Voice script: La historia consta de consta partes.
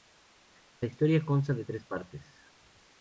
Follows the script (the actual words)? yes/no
no